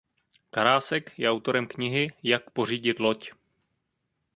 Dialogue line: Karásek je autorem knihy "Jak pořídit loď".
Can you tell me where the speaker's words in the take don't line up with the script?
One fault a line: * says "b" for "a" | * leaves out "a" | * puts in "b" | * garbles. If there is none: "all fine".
all fine